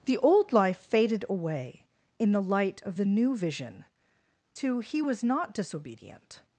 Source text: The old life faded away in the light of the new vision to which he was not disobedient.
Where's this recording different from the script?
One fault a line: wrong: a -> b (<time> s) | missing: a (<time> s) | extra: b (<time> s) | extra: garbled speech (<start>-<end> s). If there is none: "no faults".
missing: which (4.8 s)